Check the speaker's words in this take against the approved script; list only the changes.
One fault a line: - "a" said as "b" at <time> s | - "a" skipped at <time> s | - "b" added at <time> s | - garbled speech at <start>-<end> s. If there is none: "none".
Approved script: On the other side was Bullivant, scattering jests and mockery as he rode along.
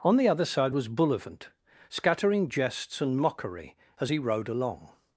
none